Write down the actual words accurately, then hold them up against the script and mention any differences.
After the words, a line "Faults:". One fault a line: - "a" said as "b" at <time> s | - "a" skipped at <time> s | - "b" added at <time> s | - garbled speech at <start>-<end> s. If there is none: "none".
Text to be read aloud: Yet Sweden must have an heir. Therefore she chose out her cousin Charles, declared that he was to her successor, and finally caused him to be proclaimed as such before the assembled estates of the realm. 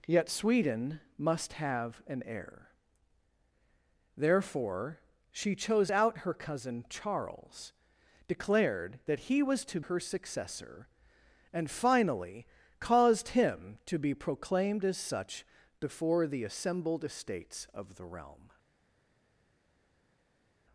Yet Sweden must have an heir. Therefore she chose out her cousin Charles, declared that he was to her successor, and finally caused him to be proclaimed as such before the assembled estates of the realm.
Faults:
none